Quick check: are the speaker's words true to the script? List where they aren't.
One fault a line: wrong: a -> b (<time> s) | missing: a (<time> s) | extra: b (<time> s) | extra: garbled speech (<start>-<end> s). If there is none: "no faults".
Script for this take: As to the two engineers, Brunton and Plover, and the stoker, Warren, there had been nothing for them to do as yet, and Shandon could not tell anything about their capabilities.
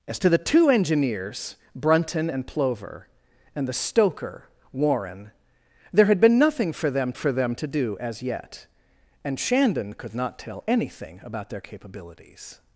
extra: for them (7.1 s)